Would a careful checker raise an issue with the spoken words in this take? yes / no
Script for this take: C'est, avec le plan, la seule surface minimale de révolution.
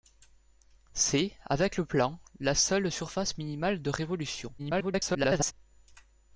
yes